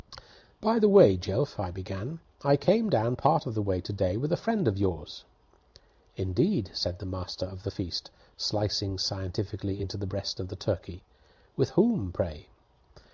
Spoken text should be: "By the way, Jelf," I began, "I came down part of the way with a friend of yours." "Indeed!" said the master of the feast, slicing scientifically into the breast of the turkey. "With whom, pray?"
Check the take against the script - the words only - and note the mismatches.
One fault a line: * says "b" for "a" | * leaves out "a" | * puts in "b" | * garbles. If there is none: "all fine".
* puts in "to day"